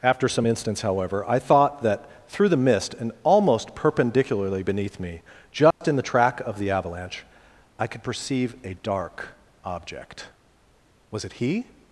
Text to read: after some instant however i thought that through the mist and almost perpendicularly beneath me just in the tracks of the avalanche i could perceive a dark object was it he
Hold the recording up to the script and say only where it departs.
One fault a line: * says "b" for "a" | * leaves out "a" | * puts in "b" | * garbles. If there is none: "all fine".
* says "instants" for "instant"
* says "track" for "tracks"